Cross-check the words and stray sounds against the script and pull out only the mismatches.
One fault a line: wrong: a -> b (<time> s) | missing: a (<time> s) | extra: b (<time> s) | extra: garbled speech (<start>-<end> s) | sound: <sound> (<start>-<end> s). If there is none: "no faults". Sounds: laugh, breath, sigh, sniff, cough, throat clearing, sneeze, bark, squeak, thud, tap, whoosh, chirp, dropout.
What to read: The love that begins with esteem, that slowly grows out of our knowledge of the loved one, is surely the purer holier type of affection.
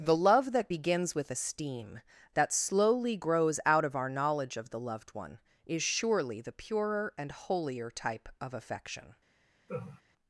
extra: and (7.2 s)
sound: laugh (9.7-10.0 s)